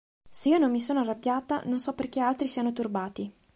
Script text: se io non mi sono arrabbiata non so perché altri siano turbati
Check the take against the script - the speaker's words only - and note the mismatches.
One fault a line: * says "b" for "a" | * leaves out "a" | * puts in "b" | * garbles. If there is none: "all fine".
all fine